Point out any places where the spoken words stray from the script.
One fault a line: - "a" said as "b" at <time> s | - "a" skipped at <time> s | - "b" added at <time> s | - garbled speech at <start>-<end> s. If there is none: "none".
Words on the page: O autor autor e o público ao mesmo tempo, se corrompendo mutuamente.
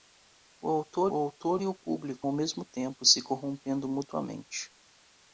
none